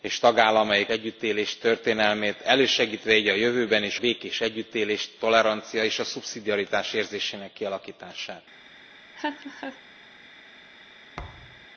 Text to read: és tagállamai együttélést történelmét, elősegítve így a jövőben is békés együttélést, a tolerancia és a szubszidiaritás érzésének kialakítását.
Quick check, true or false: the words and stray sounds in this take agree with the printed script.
false